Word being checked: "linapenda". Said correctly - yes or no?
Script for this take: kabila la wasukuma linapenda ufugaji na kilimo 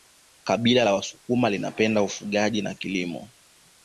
yes